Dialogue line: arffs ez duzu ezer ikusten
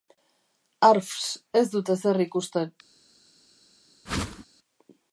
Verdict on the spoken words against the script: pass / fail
fail